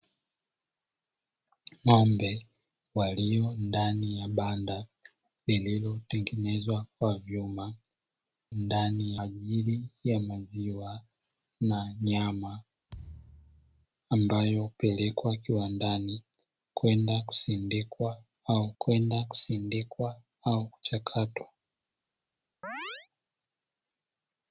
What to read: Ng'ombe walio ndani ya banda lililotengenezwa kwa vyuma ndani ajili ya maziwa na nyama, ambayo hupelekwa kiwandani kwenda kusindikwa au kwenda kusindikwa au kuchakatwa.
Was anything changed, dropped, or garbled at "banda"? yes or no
no